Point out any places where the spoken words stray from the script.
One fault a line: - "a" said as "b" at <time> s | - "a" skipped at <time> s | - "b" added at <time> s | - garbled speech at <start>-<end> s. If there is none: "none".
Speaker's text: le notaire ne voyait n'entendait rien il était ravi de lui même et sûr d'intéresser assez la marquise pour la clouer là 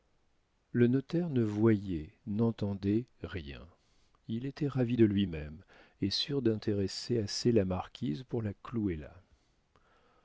none